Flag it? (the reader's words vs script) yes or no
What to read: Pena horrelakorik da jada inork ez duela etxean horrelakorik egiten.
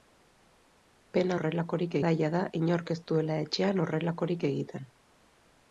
no